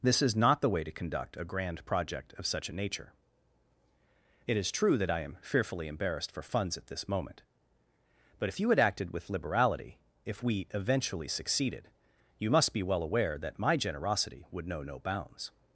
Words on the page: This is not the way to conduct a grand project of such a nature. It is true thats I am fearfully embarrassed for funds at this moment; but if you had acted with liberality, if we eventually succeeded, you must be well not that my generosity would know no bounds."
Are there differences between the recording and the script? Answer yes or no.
yes